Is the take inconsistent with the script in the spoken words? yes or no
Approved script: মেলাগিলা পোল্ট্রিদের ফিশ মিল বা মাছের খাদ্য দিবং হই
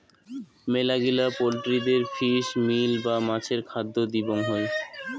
no